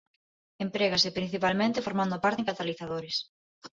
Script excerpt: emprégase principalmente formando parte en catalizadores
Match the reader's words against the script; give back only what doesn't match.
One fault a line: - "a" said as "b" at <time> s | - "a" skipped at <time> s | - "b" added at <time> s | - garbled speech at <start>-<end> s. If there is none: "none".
none